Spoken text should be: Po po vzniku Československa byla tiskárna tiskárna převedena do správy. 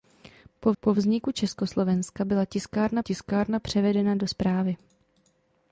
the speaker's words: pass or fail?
pass